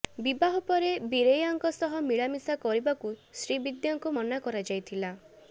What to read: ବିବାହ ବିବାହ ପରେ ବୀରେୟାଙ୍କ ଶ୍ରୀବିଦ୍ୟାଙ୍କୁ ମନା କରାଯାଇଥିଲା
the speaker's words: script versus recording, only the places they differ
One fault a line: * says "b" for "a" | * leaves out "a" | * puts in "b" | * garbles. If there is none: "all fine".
* leaves out "ବିବାହ"
* puts in "ସହ ମିଳାମିଶା କରିବାକୁ"